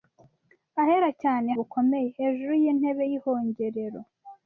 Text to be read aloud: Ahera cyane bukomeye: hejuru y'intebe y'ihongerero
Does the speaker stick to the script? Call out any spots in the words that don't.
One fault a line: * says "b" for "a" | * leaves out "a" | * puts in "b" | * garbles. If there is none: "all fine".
all fine